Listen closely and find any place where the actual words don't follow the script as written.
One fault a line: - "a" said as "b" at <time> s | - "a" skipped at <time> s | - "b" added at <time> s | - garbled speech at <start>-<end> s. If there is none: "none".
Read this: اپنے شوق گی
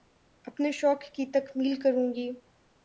- "کی تکمیل کروں" added at 1.1 s